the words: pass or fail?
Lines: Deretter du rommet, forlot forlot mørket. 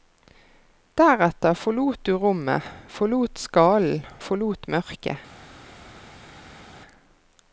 fail